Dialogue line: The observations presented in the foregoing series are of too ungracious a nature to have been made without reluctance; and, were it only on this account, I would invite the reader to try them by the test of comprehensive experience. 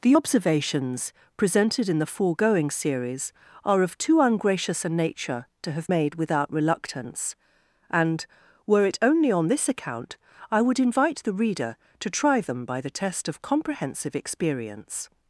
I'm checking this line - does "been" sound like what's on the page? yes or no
no